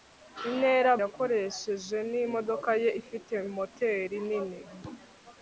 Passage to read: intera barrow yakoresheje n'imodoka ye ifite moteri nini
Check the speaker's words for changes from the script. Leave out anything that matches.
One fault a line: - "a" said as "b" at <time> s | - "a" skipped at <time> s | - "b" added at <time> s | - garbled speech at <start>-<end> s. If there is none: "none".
- "barrow" skipped at 0.9 s